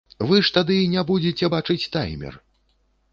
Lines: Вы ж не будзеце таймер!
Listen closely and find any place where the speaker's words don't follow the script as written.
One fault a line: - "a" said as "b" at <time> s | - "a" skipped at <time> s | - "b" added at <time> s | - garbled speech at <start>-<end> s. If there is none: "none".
- "тады" added at 0.6 s
- "бачыць" added at 1.5 s